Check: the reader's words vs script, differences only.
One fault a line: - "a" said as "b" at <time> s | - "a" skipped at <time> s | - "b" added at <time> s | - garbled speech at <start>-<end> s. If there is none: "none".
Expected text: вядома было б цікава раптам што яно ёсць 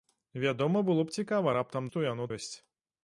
none